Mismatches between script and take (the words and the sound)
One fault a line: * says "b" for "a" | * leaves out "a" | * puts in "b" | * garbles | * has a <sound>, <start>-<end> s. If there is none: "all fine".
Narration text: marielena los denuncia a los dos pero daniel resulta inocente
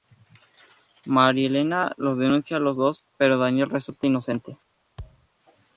* has a thud, 5.0-5.3 s